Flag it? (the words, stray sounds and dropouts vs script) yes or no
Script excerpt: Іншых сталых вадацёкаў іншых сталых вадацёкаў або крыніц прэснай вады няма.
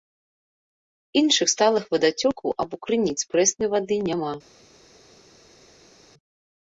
yes